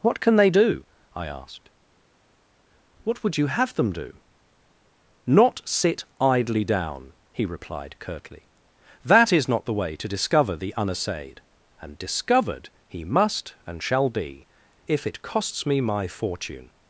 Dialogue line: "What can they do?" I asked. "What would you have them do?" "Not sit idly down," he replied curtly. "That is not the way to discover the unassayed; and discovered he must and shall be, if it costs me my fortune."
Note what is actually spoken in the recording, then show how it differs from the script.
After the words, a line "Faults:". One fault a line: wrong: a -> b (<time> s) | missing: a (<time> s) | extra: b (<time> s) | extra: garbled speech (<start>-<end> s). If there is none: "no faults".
"What can they do?" I asked. "What would you have them do?" "Not sit idly down," he replied curtly. "That is not the way to discover the unassayed; and discovered he must and shall be, if it costs me my fortune."
Faults:
no faults